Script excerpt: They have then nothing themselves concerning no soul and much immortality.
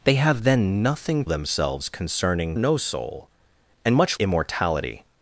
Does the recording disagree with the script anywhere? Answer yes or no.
no